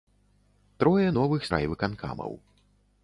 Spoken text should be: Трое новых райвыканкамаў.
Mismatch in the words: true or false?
false